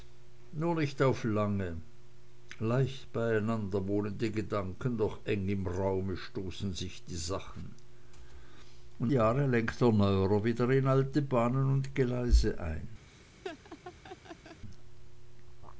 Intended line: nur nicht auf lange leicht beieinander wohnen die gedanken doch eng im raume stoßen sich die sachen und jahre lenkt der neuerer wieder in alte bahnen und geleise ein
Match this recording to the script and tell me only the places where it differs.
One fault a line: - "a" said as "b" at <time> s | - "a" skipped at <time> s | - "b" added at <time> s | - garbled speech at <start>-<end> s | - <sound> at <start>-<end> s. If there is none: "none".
- laugh at 13.1-14.6 s